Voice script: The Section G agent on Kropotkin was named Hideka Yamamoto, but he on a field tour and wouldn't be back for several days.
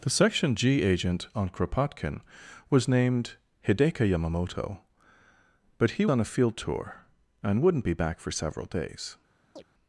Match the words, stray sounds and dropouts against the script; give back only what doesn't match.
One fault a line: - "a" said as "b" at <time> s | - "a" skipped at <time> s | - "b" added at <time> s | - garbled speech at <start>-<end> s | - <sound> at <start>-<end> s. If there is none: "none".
- chirp at 9.6-9.6 s